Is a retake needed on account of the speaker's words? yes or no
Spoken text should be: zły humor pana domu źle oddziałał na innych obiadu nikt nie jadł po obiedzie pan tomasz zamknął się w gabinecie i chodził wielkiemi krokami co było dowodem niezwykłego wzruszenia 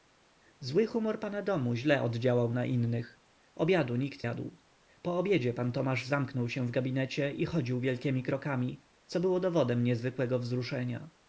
yes